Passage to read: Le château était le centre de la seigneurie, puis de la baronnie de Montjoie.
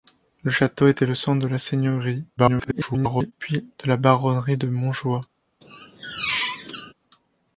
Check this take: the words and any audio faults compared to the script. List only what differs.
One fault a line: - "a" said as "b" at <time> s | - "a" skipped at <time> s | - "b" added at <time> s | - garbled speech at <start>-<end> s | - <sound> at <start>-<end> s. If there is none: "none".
- garbled speech at 2.4-3.3 s
- squeak at 5.6-6.9 s